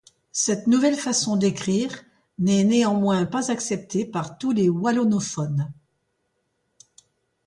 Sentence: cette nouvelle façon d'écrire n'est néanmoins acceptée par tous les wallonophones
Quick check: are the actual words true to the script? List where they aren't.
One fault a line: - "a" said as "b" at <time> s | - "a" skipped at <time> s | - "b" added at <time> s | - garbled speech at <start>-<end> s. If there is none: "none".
- "pas" added at 3.2 s